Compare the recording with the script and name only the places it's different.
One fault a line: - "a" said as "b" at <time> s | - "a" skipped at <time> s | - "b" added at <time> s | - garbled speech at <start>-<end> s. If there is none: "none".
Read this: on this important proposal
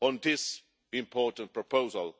none